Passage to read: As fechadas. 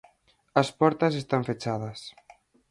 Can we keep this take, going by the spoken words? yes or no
no